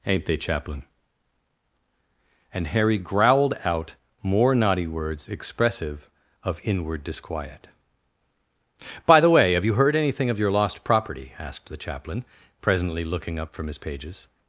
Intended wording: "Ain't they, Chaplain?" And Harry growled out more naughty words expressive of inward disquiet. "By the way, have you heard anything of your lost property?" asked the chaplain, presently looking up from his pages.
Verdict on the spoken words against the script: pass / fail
pass